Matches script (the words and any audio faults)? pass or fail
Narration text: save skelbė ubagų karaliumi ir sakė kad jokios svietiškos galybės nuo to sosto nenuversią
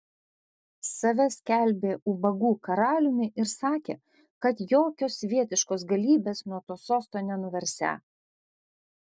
pass